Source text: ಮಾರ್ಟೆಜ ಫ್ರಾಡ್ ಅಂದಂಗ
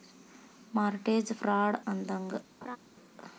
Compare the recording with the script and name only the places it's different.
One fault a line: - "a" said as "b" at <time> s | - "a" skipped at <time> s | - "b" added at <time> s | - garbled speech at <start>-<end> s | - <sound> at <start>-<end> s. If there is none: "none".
- laugh at 2.6-2.8 s